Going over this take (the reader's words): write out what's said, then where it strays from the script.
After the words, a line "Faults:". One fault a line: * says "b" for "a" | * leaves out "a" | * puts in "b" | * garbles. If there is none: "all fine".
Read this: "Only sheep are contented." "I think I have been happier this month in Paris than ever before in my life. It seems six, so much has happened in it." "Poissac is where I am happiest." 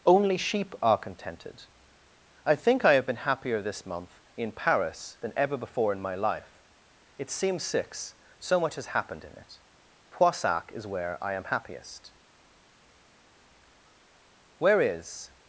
"Only sheep are contented." "I think I have been happier this month in Paris than ever before in my life. It seems six, so much has happened in it." "Poissac is where I am happiest." "Where is
Faults:
* puts in "Where is"